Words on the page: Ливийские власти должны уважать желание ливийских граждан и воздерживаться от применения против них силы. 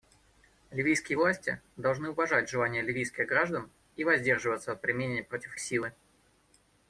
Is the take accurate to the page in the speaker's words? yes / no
no